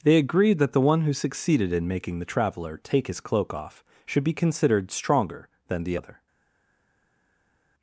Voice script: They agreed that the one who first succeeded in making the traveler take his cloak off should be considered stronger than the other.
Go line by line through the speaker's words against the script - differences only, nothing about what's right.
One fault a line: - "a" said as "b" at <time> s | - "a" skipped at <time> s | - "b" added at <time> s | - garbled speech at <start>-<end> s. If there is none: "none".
- "first" skipped at 1.1 s